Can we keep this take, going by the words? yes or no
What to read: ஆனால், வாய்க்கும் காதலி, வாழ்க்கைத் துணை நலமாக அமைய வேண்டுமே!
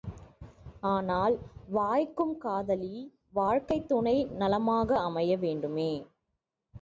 yes